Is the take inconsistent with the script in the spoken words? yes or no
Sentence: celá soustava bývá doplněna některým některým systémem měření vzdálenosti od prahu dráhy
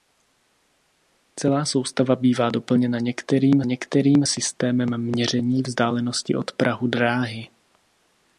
no